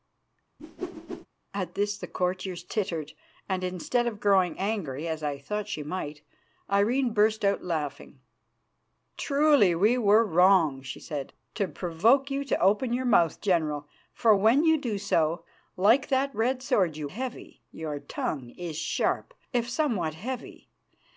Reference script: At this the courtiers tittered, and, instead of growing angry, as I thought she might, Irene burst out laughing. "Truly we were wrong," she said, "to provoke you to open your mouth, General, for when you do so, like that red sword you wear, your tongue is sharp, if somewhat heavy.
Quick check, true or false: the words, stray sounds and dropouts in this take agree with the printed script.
false